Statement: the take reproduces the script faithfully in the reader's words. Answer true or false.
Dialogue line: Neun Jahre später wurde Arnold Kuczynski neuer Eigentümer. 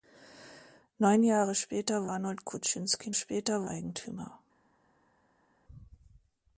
false